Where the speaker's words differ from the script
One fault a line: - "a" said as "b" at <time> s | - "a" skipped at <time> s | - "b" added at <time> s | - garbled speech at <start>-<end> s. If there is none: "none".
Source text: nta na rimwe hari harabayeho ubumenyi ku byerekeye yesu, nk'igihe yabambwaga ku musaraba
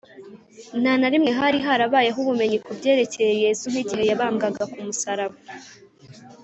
none